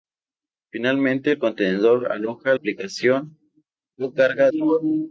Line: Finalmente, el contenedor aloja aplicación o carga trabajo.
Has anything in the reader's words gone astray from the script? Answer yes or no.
no